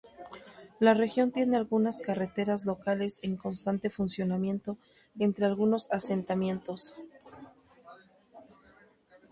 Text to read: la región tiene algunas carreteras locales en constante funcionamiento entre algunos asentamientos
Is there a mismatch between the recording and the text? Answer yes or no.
no